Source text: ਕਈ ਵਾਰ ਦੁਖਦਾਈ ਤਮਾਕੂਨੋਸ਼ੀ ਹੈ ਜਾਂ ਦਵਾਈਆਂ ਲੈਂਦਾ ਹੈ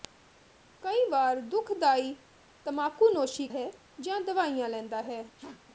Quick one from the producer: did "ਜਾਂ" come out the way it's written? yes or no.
yes